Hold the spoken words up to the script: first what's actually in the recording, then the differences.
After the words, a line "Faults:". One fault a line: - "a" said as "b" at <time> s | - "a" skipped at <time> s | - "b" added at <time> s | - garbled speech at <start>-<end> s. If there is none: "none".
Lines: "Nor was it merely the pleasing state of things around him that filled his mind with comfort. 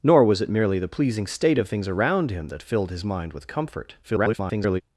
"Nor was it merely the pleasing state of things around him that filled his mind with comfort. [garbled]
Faults:
- garbled speech at 4.0-4.8 s